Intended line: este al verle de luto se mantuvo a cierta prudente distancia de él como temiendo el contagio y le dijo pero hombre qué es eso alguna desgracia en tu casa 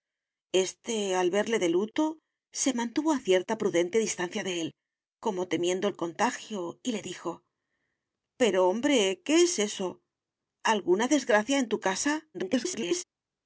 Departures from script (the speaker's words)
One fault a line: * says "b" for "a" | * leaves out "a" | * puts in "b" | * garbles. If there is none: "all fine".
* garbles